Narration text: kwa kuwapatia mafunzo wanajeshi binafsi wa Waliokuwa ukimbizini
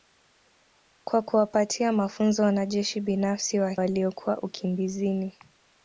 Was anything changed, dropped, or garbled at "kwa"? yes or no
no